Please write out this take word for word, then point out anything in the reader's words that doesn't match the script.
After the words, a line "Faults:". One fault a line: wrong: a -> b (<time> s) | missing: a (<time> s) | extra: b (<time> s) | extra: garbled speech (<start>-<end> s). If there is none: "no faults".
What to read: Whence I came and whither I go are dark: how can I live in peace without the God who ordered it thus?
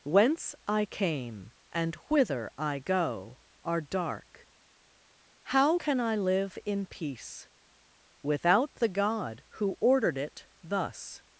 Whence I came and whither I go are dark: how can I live in peace without the God who ordered it thus?
Faults:
no faults